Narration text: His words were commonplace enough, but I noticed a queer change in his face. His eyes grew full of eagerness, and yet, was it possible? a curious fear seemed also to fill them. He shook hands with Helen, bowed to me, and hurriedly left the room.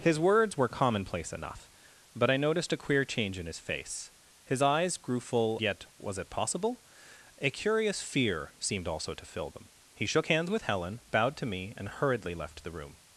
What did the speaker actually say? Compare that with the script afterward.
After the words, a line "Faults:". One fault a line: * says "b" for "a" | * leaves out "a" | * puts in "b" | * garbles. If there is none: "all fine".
His words were commonplace enough, but I noticed a queer change in his face. His eyes grew full yet, was it possible? a curious fear seemed also to fill them. He shook hands with Helen, bowed to me, and hurriedly left the room.
Faults:
* leaves out "of eagerness and"